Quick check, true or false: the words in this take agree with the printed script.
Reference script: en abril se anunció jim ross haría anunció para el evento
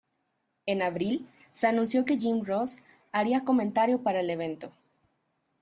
false